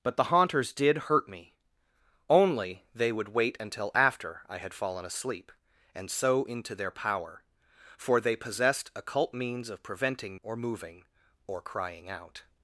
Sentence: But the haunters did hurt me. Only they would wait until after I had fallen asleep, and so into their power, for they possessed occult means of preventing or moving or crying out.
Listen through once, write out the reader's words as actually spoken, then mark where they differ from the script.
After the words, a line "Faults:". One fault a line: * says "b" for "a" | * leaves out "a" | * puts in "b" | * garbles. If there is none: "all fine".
But the haunters did hurt me. Only they would wait until after I had fallen asleep, and so into their power, for they possessed occult means of preventing or moving or crying out.
Faults:
all fine